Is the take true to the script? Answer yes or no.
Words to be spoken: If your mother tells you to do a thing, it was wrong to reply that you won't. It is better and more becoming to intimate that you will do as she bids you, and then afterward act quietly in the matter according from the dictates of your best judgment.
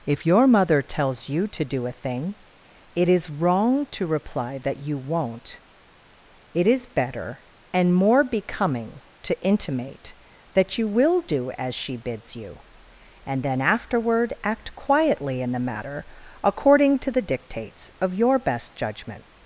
no